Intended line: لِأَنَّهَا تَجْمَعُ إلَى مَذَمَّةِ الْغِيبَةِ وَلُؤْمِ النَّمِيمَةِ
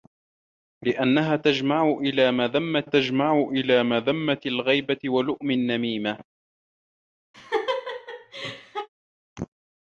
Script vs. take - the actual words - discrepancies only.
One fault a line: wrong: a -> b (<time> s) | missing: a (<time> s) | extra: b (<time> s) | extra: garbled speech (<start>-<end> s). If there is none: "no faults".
extra: تَجْمَعُ إلَى مَذَمَّةِ (2.8 s)